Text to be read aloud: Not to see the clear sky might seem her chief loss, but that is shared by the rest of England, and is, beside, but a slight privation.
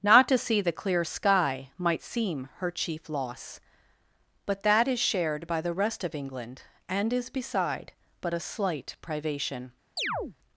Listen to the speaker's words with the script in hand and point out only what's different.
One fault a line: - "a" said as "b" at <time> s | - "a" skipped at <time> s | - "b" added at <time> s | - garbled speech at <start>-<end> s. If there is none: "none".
none